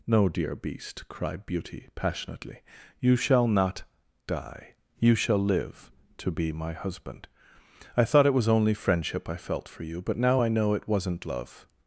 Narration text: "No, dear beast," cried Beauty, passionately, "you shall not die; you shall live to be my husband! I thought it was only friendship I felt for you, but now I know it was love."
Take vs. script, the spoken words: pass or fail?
fail